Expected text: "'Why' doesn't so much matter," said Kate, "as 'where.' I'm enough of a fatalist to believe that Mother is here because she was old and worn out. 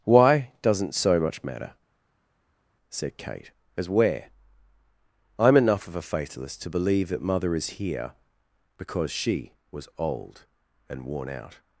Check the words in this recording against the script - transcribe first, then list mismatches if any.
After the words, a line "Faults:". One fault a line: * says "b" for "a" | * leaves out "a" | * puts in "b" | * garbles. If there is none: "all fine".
"'Why' doesn't so much matter," said Kate, "as 'where.' I'm enough of a fatalist to believe that Mother is here because she was old and worn out.
Faults:
all fine